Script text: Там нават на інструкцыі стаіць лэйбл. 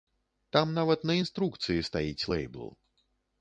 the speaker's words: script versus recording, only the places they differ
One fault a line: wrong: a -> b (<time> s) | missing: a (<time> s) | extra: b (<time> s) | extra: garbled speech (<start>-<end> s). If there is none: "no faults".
no faults